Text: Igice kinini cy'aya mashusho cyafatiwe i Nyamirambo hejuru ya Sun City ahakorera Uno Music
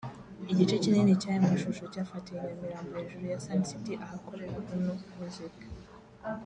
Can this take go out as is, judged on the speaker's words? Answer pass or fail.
pass